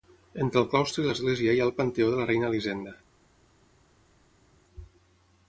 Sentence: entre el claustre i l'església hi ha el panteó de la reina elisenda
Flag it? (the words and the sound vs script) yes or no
no